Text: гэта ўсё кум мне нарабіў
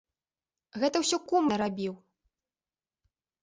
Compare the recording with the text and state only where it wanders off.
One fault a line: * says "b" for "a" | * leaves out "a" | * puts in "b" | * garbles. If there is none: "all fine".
* leaves out "мне"